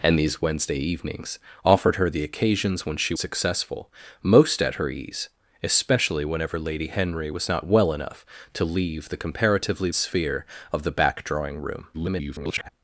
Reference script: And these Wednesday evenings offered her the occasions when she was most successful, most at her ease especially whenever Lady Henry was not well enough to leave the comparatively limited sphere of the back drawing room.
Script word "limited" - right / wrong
wrong